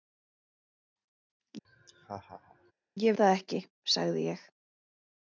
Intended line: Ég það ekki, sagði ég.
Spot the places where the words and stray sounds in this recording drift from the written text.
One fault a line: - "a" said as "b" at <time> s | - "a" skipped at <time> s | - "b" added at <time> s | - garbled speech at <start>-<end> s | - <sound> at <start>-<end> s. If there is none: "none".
- laugh at 1.6-2.7 s